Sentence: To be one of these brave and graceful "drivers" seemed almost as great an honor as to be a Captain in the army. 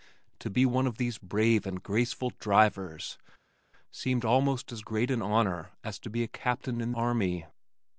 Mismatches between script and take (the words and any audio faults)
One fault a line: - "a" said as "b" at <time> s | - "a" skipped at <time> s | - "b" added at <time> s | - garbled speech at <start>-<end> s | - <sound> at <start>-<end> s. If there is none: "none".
- "the" skipped at 6.9 s